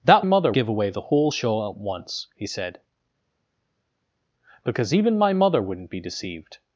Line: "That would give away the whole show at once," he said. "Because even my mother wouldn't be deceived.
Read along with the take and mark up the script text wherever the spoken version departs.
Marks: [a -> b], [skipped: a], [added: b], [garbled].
"That [would -> mother] give away the whole show at once," he said. "Because even my mother wouldn't be deceived.